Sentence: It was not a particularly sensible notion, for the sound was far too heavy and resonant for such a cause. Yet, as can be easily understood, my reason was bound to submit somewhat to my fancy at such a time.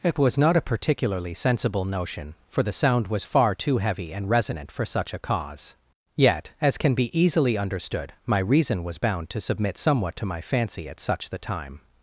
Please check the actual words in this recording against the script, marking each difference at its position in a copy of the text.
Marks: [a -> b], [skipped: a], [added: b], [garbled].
It was not a particularly sensible notion, for the sound was far too heavy and resonant for such a cause. Yet, as can be easily understood, my reason was bound to submit somewhat to my fancy at such [a -> the] time.